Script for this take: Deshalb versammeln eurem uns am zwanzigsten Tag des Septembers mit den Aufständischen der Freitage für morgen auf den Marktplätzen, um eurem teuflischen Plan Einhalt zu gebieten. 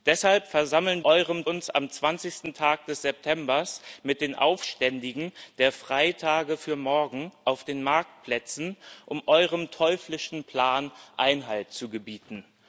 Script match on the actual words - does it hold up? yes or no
yes